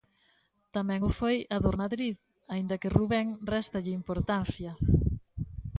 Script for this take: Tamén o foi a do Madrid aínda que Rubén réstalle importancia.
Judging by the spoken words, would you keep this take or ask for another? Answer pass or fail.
pass